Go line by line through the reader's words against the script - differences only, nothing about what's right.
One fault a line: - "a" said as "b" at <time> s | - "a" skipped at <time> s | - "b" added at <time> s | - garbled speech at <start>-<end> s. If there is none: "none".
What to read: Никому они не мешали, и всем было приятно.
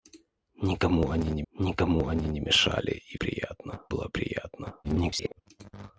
- "никому они не" added at 1.5 s
- "всем" said as "приятно" at 3.1 s
- garbled speech at 4.8-5.4 s